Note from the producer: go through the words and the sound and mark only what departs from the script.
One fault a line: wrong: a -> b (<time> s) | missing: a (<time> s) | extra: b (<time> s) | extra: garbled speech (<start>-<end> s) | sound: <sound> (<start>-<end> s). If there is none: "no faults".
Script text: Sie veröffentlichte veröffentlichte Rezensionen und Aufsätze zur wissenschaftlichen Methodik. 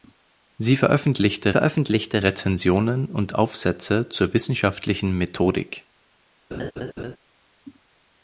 sound: laugh (6.5-7.2 s)